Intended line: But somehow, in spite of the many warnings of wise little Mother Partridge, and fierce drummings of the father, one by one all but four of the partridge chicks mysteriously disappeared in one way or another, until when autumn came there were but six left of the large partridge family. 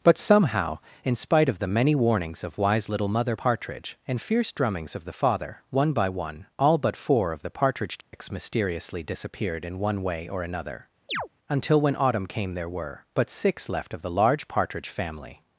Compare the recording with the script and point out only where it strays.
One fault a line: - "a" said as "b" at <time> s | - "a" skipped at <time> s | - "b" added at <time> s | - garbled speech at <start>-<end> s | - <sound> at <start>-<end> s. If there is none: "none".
- dropout at 8.0-8.1 s
- chirp at 11.1-11.3 s